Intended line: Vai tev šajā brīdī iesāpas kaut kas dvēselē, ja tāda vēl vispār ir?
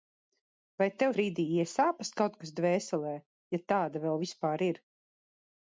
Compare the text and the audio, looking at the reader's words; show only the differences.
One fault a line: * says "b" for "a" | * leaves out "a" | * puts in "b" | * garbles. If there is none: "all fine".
* leaves out "šajā"